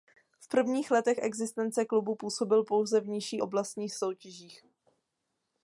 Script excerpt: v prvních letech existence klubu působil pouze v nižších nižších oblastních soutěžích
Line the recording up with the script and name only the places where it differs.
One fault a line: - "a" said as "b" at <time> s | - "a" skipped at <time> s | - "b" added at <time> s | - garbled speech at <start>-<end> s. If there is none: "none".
- "nižších" skipped at 3.4 s